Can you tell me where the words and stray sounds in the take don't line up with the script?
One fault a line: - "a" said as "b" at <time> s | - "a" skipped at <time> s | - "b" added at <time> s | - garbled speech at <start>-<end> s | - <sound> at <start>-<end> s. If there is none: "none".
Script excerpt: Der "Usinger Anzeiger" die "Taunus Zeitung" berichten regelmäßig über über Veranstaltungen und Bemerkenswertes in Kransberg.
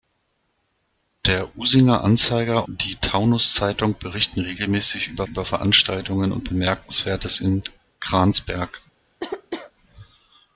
- cough at 9.2-9.7 s